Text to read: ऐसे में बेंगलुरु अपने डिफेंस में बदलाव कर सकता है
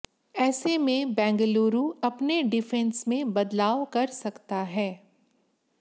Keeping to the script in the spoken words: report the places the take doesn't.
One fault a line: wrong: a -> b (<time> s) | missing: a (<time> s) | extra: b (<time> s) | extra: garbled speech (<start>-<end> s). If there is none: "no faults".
no faults